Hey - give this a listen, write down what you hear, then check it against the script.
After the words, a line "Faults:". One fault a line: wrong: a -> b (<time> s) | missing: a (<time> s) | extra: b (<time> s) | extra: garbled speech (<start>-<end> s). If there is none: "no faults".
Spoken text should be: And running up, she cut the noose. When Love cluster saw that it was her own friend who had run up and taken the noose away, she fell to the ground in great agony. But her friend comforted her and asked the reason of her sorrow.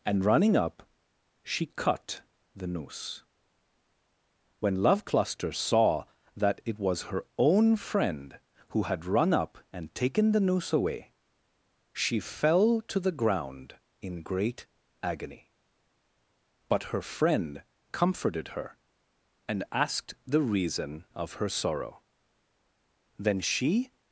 And running up, she cut the noose. When Love cluster saw that it was her own friend who had run up and taken the noose away, she fell to the ground in great agony. But her friend comforted her and asked the reason of her sorrow. Then she
Faults:
extra: Then she (23.2 s)